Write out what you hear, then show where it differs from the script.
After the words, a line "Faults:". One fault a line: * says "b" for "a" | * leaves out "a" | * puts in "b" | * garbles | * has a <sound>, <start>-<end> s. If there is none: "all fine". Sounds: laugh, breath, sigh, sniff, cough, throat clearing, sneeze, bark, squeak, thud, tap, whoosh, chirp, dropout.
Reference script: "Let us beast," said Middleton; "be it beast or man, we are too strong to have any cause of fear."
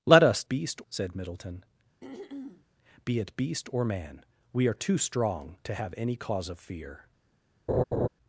"Let us beast," said Middleton; "be it beast or man, we are too strong to have any cause of fear."
Faults:
* has a throat clearing, 2.0-2.7 s
* has a laugh, 7.7-8.1 s